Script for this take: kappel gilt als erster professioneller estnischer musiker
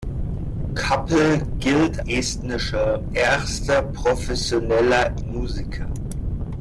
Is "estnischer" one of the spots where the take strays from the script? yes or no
yes